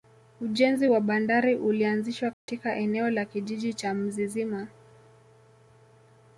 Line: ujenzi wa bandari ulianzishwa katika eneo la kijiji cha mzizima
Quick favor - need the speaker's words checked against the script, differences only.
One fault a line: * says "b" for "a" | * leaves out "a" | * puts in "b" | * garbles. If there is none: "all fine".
all fine